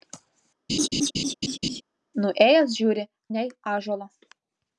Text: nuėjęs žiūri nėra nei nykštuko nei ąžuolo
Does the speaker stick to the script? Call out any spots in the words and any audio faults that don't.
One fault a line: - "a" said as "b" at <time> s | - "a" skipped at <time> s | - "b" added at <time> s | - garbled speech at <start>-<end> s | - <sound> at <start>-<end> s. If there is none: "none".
- laugh at 0.7-1.8 s
- "nėra nei nykštuko" skipped at 3.0 s